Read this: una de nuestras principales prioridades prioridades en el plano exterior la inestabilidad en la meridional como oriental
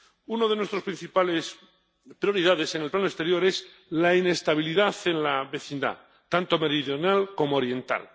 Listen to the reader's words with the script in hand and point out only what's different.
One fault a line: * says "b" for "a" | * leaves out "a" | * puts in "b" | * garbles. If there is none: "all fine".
* leaves out "prioridades"
* puts in "es"
* puts in "vecindad tanto"